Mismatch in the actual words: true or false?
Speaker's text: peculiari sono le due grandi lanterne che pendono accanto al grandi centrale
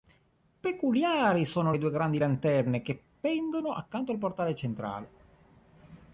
true